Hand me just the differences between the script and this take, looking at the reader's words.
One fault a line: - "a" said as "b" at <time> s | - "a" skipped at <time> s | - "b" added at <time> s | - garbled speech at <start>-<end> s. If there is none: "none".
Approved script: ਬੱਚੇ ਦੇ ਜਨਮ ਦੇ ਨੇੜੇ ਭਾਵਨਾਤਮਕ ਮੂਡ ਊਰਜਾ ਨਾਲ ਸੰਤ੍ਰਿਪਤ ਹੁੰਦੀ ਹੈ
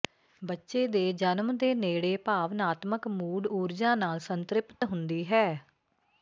none